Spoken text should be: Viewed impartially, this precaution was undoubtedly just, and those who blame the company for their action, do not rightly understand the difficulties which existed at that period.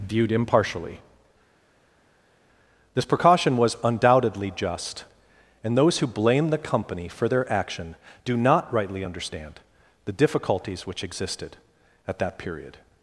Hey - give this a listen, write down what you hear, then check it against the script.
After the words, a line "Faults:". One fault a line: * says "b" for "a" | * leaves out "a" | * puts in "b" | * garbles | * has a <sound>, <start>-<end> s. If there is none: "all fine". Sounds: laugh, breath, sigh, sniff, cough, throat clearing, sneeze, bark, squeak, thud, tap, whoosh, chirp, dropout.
Viewed impartially, this precaution was undoubtedly just, and those who blame the company for their action, do not rightly understand the difficulties which existed at that period.
Faults:
all fine